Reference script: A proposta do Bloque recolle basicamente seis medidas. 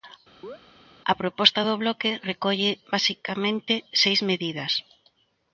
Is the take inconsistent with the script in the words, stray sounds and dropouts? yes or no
yes